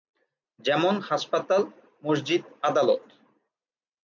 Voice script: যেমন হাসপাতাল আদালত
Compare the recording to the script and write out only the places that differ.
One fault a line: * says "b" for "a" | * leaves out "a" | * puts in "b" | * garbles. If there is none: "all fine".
* puts in "মসজিদ"